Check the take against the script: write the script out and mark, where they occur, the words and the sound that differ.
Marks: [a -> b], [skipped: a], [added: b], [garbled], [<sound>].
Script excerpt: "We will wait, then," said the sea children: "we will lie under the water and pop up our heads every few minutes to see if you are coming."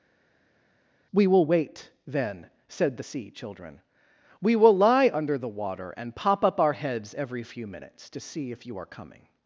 "We will wait, then," said the sea children: "we will lie under the water and pop up our heads every few minutes to see if you are coming."